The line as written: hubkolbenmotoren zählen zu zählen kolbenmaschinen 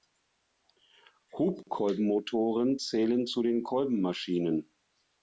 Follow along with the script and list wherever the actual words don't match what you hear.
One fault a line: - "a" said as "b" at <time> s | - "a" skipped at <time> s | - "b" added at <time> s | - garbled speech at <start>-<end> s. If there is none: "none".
- "zählen" said as "den" at 3.4 s